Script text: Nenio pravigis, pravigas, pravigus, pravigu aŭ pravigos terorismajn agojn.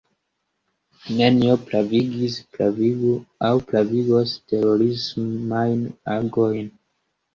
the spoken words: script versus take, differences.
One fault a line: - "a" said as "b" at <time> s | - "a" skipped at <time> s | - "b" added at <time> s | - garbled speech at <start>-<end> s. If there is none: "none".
- "pravigas pravigus" skipped at 2.4 s